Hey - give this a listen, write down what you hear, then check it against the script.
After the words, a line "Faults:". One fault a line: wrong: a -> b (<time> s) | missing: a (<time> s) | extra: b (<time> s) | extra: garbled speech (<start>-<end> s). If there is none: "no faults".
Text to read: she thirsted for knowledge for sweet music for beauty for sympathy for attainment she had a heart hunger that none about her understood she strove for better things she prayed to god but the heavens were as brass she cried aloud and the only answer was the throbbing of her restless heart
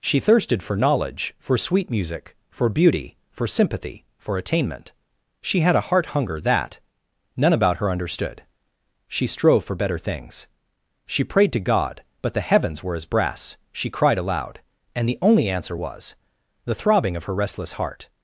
she thirsted for knowledge for sweet music for beauty for sympathy for attainment she had a heart hunger that none about her understood she strove for better things she prayed to god but the heavens were as brass she cried aloud and the only answer was the throbbing of her restless heart
Faults:
no faults